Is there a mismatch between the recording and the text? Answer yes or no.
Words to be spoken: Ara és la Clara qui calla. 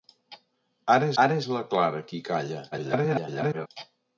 yes